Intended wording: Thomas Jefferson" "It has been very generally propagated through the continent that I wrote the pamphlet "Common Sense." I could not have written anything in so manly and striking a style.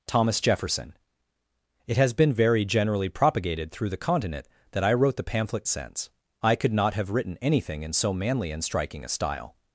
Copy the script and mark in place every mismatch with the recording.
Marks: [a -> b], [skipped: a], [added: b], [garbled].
Thomas Jefferson" "It has been very generally propagated through the continent that I wrote the pamphlet [skipped: "Common] Sense." I could not have written anything in so manly and striking a style.